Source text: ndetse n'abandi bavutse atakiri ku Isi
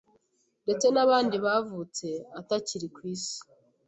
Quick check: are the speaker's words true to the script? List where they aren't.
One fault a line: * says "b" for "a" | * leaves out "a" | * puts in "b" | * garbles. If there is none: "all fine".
all fine